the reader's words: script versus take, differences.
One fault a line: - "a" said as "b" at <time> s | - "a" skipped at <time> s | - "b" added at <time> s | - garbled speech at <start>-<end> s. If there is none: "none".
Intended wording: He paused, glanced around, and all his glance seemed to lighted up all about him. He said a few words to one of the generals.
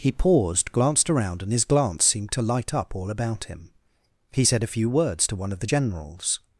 - "all" skipped at 1.5 s
- "lighted" said as "light" at 2.4 s